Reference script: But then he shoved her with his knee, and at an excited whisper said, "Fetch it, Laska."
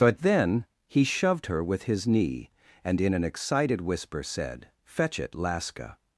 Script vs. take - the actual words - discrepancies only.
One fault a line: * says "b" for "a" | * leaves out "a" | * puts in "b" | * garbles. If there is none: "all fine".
* says "in" for "at"